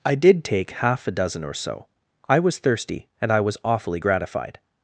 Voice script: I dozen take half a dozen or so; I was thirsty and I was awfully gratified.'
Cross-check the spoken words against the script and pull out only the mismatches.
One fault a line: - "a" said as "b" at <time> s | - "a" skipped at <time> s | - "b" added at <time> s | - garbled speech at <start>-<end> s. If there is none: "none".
- "dozen" said as "did" at 0.1 s